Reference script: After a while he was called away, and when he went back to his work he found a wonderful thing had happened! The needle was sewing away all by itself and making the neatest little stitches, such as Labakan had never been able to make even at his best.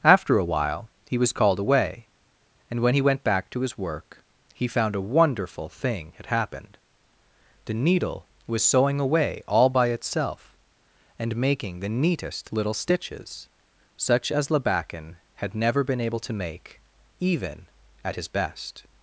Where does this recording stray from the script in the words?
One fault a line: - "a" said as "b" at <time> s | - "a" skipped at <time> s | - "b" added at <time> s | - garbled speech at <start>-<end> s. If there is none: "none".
none